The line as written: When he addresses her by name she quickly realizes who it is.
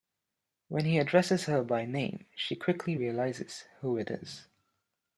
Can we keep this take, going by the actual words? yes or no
yes